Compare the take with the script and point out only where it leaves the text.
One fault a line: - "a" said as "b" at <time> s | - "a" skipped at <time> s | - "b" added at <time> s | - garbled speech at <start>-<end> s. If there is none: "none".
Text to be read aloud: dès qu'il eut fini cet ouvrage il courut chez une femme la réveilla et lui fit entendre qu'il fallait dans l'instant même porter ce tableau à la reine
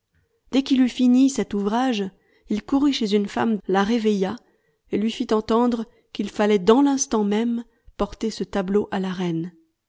none